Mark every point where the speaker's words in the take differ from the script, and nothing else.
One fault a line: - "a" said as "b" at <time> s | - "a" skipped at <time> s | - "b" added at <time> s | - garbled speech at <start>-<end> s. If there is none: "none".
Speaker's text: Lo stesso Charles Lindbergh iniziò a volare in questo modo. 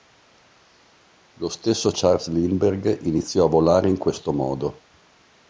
none